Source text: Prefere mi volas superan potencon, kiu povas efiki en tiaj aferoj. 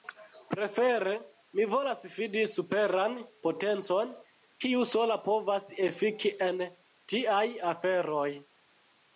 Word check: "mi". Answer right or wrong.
right